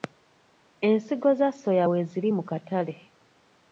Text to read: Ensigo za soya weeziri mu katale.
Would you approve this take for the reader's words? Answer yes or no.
yes